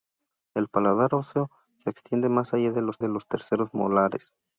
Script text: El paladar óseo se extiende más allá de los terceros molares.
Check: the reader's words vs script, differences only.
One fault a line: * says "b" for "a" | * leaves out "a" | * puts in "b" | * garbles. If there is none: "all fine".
* puts in "de los"